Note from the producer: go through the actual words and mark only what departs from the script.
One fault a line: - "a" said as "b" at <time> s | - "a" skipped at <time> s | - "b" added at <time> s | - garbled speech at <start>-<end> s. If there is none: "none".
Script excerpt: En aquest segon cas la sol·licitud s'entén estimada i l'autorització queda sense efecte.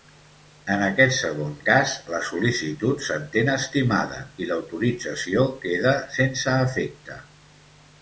none